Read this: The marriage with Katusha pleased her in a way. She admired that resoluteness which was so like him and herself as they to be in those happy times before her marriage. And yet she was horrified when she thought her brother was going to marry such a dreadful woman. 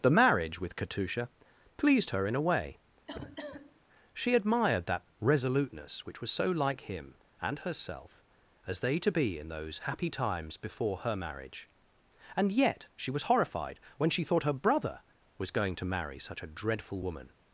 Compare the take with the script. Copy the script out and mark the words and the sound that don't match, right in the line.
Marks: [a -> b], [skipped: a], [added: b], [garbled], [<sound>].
The marriage with Katusha pleased her in a way. [cough] She admired that resoluteness which was so like him and herself as they to be in those happy times before her marriage. And yet she was horrified when she thought her brother was going to marry such a dreadful woman.